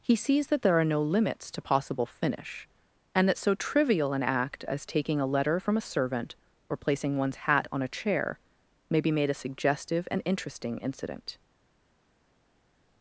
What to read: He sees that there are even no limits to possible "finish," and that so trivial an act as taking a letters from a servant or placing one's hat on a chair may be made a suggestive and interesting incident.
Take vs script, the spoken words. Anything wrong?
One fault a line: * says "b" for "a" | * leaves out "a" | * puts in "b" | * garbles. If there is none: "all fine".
* leaves out "even"
* says "letter" for "letters"